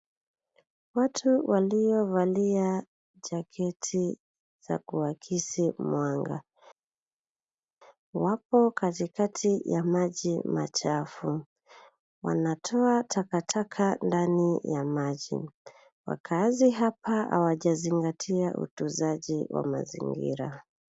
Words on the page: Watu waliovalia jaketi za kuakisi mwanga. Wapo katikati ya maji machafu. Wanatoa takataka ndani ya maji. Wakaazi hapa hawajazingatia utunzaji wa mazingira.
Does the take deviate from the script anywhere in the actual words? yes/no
no